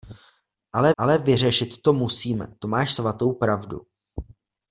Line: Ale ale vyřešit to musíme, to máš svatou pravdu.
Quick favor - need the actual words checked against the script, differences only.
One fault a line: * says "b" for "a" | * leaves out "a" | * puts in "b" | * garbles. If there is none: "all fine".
all fine